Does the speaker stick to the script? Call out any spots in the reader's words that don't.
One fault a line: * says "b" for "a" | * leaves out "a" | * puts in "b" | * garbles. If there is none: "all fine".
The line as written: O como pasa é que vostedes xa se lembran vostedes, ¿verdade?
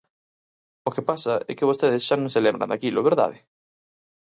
* says "que" for "como"
* puts in "non"
* says "daquilo" for "vostedes"